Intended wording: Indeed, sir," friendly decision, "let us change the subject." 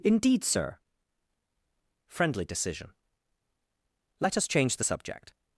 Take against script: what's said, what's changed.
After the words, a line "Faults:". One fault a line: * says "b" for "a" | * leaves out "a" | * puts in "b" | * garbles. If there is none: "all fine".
Indeed, sir," friendly decision, "let us change the subject."
Faults:
all fine